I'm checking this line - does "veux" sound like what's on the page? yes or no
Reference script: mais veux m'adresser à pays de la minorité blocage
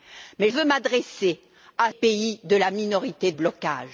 yes